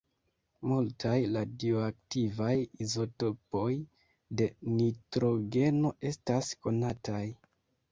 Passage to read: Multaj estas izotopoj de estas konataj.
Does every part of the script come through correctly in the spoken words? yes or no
no